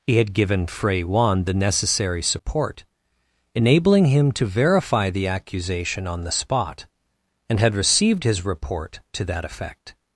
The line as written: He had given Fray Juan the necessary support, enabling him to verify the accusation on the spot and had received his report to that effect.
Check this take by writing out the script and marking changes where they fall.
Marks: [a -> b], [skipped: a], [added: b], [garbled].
He had given Fray Juan the necessary support, enabling him to verify the accusation on the spot and had received his report to that effect.